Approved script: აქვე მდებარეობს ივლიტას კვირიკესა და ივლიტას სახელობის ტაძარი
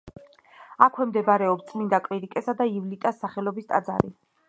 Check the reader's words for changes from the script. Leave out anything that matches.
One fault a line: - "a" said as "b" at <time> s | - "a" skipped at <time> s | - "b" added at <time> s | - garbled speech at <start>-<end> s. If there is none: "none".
- "ივლიტას" said as "წმინდა" at 1.7 s